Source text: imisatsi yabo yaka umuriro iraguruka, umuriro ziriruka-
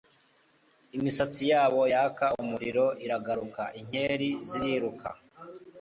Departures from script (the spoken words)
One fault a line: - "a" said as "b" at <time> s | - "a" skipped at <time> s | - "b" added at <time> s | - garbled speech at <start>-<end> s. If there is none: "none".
- "umuriro" said as "inkeri" at 3.8 s